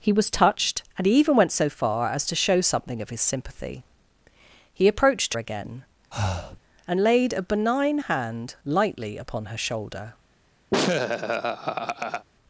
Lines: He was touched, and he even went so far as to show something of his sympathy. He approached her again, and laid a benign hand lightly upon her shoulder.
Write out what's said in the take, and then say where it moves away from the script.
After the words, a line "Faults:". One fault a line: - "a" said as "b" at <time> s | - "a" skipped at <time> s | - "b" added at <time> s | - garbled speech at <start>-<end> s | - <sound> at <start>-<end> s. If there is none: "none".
He was touched, and he even went so far as to show something of his sympathy. He approached again, and laid a benign hand lightly upon her shoulder.
Faults:
- "her" skipped at 5.3 s
- breath at 6.1-6.6 s
- laugh at 10.7-12.3 s